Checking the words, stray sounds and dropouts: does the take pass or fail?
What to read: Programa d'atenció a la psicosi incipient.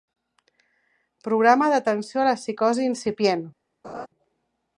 fail